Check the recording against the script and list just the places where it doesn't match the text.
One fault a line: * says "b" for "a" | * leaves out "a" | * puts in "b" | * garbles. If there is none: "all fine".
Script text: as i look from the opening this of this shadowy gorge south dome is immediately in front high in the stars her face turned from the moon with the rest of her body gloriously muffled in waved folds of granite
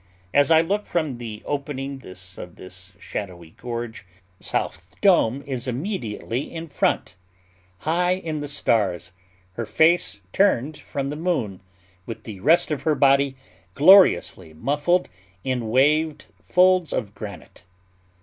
all fine